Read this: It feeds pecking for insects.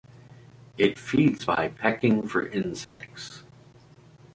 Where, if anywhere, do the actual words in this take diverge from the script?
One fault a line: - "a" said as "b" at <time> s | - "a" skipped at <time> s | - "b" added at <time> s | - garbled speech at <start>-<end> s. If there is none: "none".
- "by" added at 1.4 s